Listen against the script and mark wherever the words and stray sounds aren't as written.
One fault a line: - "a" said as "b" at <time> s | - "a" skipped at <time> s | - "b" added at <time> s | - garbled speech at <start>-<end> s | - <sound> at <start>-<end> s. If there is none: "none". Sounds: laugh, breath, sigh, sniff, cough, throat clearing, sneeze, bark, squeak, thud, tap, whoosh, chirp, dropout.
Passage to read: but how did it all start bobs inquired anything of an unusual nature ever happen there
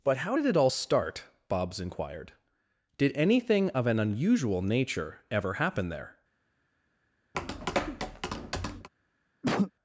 - "did" added at 3.0 s
- tap at 7.3-8.9 s
- cough at 9.4-9.7 s